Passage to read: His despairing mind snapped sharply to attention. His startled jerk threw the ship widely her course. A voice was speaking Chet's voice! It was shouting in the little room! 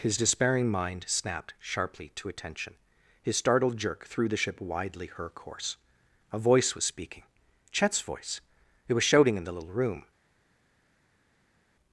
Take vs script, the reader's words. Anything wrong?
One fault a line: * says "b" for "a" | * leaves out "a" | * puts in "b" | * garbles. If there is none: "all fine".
all fine